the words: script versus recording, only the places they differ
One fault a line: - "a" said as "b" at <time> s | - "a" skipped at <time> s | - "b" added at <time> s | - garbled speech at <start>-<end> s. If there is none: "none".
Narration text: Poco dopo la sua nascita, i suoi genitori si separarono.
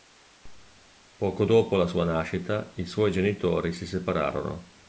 none